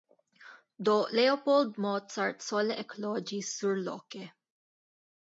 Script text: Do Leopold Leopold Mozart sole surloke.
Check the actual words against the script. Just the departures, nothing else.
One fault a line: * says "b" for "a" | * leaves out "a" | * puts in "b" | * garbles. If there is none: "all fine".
* leaves out "Leopold"
* puts in "ekloĝis"